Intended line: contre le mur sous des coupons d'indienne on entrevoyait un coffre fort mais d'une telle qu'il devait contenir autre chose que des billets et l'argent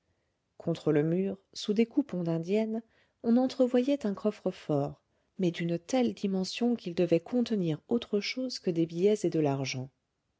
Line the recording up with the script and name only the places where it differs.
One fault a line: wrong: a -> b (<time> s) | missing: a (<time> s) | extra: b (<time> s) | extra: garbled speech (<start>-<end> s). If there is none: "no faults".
extra: dimension (6.2 s)
extra: de (9.3 s)